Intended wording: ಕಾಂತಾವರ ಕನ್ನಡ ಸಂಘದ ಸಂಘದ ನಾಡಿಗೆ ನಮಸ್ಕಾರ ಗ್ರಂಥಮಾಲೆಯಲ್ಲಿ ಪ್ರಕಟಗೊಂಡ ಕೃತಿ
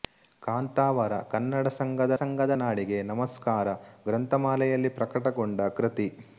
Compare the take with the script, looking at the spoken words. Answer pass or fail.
pass